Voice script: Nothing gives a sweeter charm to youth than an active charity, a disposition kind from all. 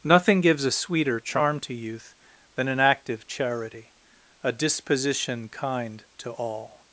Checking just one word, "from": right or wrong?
wrong